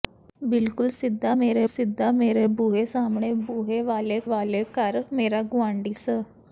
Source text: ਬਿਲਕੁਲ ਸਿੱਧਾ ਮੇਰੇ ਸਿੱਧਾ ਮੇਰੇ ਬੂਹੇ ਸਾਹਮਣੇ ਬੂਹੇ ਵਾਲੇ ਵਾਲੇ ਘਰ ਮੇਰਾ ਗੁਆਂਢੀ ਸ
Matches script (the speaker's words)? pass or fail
pass